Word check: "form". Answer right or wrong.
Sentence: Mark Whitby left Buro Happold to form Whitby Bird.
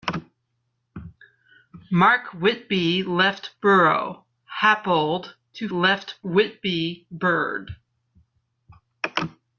wrong